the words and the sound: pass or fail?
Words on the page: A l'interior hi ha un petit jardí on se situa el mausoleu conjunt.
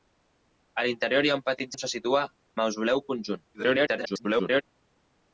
fail